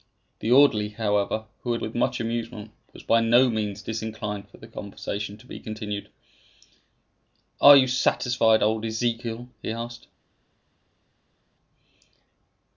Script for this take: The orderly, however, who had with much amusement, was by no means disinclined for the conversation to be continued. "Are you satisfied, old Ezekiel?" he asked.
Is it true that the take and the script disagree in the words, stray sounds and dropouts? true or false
false